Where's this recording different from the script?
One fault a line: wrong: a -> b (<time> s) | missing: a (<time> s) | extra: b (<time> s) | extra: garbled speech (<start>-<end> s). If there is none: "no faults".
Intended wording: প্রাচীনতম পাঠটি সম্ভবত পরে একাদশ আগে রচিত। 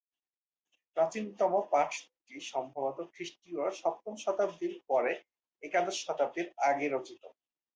extra: খ্রিস্টীয় সপ্তম শতাব্দীর (3.1 s)
extra: শতাব্দীর (6.0 s)